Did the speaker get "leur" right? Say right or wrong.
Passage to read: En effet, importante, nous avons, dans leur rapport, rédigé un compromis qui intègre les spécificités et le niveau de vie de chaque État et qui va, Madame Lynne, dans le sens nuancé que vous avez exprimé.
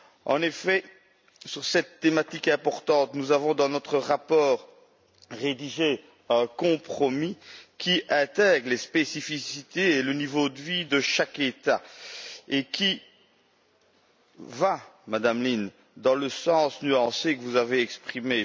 wrong